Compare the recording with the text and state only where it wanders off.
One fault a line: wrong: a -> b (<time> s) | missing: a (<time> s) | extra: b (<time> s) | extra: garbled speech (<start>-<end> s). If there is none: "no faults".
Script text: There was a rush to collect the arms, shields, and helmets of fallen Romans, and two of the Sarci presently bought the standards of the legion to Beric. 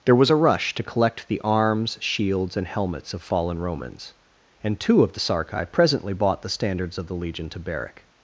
no faults